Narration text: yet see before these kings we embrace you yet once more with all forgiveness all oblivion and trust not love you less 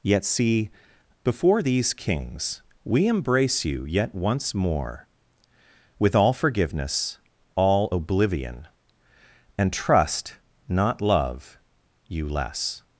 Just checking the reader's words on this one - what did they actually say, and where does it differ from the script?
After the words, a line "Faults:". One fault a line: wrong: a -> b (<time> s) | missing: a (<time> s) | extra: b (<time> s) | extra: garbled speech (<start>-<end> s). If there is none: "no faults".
yet see before these kings we embrace you yet once more with all forgiveness all oblivion and trust not love you less
Faults:
no faults